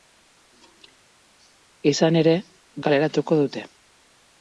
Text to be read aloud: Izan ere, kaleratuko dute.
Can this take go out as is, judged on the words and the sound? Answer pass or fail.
pass